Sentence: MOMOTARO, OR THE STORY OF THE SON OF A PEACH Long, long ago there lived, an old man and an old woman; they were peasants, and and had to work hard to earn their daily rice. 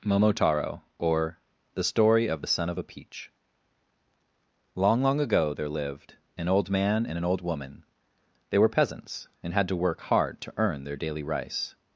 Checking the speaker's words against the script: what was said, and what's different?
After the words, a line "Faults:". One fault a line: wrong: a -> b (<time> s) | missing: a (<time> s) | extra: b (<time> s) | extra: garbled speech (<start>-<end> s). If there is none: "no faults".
MOMOTARO, OR THE STORY OF THE SON OF A PEACH Long, long ago there lived, an old man and an old woman; they were peasants, and had to work hard to earn their daily rice.
Faults:
missing: and (9.5 s)